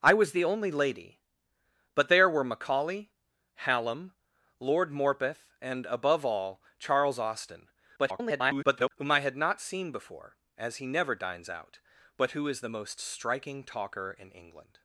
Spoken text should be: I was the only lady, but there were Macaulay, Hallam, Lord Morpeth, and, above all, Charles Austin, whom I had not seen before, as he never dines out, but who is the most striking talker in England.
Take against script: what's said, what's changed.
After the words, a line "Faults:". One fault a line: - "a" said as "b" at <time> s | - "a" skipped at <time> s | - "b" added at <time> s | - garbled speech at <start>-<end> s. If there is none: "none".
I was the only lady, but there were Macaulay, Hallam, Lord Morpeth, and, above all, Charles Austin, [garbled] whom I had not seen before, as he never dines out, but who is the most striking talker in England.
Faults:
- garbled speech at 8.0-8.9 s